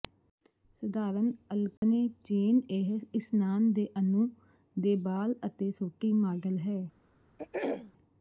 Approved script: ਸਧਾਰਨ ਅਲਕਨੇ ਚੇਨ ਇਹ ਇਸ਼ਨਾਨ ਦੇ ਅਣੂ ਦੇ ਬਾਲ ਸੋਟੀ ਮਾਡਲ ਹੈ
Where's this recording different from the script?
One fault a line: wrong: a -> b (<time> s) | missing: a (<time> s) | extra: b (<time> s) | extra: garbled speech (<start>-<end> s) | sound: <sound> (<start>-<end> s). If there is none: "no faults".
sound: dropout (1.8-1.8 s)
extra: ਅਤੇ (5.5 s)
sound: throat clearing (7.4-7.9 s)